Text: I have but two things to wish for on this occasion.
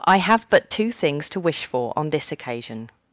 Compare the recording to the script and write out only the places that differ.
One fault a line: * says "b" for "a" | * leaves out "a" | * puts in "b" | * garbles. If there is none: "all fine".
all fine